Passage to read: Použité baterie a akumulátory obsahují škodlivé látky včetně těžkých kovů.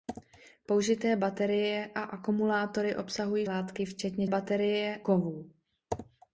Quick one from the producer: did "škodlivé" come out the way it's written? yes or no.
no